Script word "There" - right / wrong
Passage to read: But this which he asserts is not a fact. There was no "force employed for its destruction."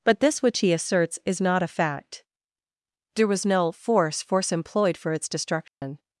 right